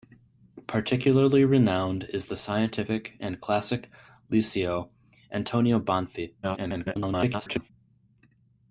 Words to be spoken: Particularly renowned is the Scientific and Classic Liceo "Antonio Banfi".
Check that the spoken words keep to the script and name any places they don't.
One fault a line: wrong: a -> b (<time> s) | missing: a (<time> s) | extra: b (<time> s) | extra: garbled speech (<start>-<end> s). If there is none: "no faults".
extra: garbled speech (6.4-7.7 s)